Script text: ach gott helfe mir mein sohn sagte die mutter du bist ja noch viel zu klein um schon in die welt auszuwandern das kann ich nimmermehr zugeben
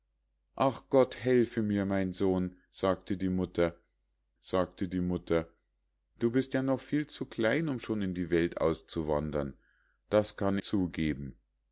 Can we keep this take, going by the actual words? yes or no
no